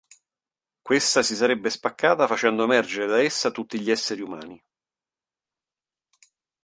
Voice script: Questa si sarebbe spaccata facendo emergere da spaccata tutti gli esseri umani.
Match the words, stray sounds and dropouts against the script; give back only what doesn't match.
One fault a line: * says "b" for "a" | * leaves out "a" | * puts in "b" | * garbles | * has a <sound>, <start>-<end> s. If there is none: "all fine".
* says "essa" for "spaccata"